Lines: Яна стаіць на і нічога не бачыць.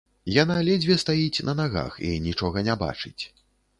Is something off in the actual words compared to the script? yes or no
yes